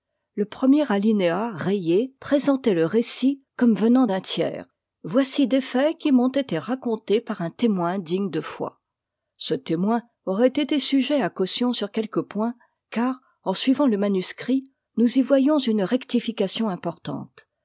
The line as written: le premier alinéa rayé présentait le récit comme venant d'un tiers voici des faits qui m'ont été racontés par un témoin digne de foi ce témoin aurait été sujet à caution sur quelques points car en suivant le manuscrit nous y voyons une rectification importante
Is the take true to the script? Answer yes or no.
yes